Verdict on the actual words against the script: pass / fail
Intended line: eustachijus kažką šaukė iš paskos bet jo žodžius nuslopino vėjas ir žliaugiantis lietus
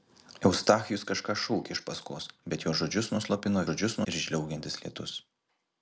fail